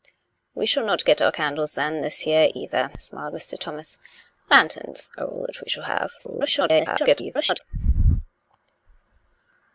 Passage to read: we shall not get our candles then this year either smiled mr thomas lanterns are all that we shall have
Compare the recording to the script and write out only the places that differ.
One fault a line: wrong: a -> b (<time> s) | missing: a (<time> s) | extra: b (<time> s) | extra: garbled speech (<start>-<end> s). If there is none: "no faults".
extra: garbled speech (6.2-7.6 s)